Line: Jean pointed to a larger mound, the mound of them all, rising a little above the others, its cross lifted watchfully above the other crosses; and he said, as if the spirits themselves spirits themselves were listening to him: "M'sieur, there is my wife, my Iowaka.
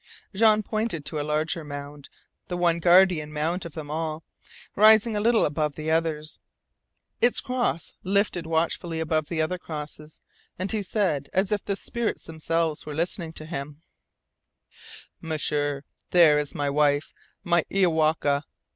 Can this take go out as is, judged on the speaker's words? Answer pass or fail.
fail